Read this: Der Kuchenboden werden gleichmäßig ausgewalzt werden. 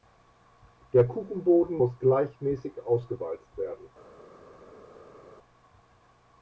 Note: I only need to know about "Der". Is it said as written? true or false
true